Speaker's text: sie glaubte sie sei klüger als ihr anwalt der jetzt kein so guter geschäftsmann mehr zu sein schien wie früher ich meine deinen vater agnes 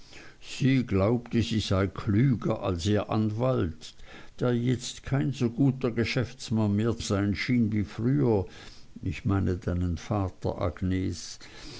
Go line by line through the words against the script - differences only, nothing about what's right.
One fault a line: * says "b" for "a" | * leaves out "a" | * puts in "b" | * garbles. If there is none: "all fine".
* leaves out "zu"